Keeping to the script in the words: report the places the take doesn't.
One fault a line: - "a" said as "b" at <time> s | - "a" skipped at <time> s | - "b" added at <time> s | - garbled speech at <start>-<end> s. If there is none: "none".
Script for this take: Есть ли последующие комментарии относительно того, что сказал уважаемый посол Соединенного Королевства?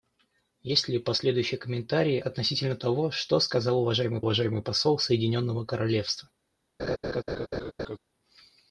- "уважаемый" added at 4.2 s